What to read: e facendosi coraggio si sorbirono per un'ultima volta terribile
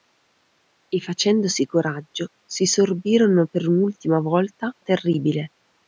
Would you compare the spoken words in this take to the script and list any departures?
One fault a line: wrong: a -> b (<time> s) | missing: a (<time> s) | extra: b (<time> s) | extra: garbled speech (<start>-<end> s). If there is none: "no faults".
no faults